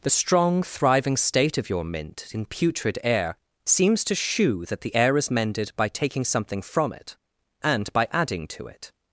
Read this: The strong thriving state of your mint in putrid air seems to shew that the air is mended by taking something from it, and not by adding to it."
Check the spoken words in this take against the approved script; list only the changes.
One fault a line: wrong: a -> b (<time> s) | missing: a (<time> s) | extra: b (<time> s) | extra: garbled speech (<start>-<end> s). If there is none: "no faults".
missing: not (7.9 s)